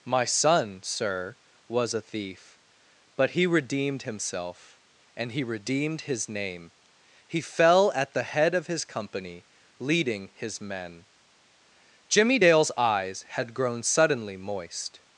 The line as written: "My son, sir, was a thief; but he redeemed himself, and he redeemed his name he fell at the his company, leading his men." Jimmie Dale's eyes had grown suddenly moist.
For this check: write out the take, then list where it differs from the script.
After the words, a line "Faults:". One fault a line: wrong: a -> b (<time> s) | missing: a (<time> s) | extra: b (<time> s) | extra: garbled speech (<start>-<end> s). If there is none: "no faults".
"My son, sir, was a thief; but he redeemed himself, and he redeemed his name he fell at the head of his company, leading his men." Jimmie Dale's eyes had grown suddenly moist.
Faults:
extra: head of (8.2 s)